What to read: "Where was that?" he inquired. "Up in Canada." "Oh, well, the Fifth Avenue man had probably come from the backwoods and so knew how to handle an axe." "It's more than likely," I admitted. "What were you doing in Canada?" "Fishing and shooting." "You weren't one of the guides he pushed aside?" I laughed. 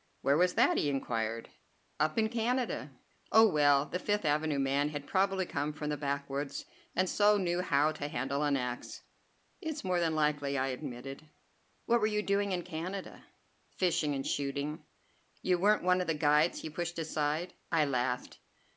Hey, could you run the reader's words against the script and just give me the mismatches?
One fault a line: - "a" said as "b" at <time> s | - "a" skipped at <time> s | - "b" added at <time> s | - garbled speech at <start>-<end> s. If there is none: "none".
none